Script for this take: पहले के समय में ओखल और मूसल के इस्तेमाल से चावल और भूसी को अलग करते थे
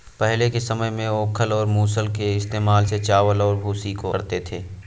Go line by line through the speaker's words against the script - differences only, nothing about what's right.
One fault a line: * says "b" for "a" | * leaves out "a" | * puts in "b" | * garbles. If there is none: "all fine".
* leaves out "अलग"